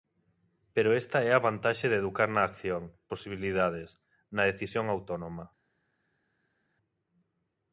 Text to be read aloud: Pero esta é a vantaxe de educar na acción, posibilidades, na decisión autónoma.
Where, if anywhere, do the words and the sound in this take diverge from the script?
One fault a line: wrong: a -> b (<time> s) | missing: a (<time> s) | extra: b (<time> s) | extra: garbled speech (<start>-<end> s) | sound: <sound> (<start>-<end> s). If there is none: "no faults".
no faults